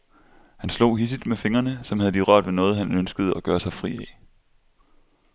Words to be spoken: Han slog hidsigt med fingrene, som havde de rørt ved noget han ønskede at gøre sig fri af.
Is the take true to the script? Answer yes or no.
yes